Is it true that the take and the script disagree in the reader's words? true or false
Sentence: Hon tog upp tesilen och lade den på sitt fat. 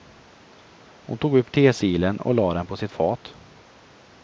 false